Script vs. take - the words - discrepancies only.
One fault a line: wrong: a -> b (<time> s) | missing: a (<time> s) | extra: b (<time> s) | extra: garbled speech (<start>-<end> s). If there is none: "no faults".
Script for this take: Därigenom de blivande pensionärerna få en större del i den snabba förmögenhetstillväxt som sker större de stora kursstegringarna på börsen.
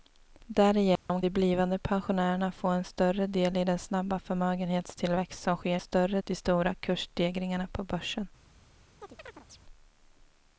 no faults